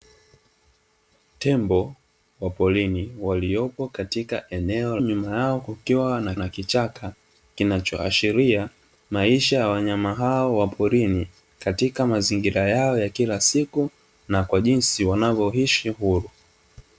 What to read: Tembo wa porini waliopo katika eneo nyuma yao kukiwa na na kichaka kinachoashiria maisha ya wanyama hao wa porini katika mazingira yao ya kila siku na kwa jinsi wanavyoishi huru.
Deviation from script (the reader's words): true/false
false